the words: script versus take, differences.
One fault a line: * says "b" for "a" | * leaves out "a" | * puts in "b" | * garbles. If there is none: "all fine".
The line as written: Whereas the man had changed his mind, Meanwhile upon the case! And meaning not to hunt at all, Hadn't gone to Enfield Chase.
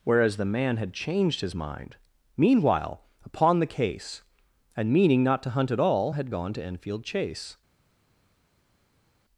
* says "Had" for "Hadn't"